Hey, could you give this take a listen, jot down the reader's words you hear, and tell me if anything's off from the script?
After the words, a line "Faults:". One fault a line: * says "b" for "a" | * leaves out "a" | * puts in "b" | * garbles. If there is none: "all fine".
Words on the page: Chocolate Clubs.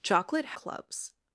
Chocolate Clubs.
Faults:
all fine